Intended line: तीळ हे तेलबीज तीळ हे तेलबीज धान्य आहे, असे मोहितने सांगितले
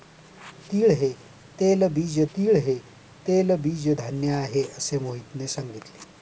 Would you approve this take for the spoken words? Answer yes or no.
yes